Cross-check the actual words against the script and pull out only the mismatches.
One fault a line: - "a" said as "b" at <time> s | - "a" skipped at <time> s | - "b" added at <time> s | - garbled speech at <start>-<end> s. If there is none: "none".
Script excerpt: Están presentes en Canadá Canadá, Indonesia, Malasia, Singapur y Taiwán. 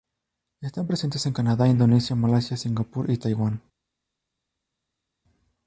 - "Canadá" skipped at 1.7 s